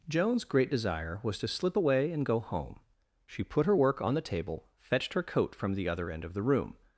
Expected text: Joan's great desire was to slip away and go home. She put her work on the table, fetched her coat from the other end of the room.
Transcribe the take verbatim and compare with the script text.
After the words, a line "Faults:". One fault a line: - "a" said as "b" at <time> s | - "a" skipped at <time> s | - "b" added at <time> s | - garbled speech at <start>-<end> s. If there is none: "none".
Joan's great desire was to slip away and go home. She put her work on the table, fetched her coat from the other end of the room.
Faults:
none